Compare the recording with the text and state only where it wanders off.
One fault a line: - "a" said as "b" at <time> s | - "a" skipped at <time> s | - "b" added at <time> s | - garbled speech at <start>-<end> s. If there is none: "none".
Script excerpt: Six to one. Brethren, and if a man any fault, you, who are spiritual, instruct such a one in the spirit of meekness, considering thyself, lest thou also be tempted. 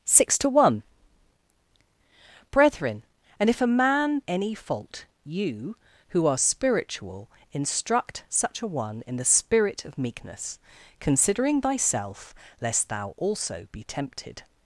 none